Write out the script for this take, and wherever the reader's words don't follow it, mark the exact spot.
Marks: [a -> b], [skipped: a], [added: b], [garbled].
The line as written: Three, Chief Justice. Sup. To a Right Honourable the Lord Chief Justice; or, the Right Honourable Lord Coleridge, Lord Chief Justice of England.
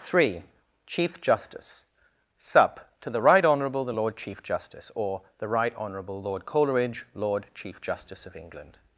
Three, Chief Justice. Sup. To [a -> the] Right Honourable the Lord Chief Justice; or, the Right Honourable Lord Coleridge, Lord Chief Justice of England.